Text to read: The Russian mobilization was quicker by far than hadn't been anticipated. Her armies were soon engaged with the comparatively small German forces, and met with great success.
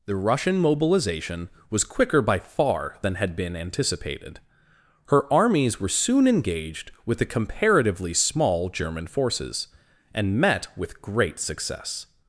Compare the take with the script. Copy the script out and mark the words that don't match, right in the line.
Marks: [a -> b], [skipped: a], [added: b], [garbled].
The Russian mobilization was quicker by far than [hadn't -> had] been anticipated. Her armies were soon engaged with the comparatively small German forces, and met with great success.